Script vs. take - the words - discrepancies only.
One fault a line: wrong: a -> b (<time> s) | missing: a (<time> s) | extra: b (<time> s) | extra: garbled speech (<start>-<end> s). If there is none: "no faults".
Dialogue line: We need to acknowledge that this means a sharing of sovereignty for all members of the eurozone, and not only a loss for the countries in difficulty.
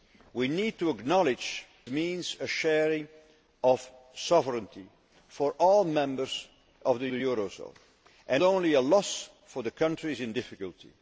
missing: that this (1.6 s)
extra: the (7.1 s)
missing: not (8.4 s)